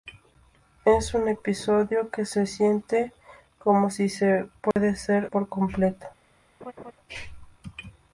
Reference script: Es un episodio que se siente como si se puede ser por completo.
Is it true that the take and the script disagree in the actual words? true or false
false